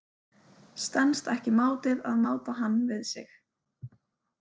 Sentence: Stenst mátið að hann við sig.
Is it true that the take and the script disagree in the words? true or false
true